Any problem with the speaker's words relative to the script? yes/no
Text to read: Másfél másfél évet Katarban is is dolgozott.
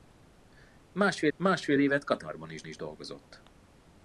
no